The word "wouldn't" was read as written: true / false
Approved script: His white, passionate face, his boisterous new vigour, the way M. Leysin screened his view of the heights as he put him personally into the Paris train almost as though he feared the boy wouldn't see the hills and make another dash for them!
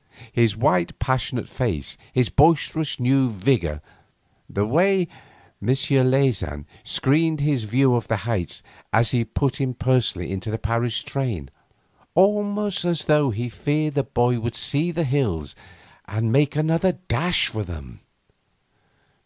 false